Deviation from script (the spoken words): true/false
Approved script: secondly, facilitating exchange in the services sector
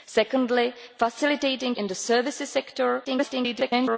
true